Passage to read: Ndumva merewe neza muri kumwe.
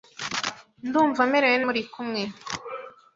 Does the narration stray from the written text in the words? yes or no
yes